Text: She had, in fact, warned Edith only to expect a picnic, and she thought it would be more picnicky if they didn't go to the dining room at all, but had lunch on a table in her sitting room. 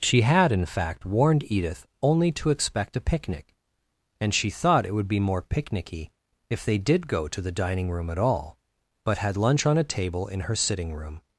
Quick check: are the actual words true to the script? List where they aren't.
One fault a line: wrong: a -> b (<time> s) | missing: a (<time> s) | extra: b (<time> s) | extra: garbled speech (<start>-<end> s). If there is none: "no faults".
wrong: didn't -> did (6.8 s)